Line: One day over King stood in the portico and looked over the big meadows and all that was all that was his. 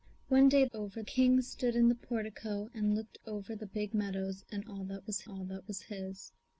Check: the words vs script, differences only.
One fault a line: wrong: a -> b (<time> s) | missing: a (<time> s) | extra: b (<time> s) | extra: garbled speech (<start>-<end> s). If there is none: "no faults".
no faults